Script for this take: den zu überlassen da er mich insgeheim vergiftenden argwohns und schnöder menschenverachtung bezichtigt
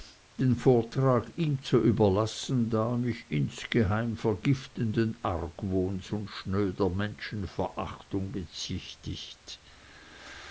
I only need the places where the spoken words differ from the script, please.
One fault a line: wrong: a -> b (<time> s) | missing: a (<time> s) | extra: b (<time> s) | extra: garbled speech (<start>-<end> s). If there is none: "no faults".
extra: vortrag ihm (0.6 s)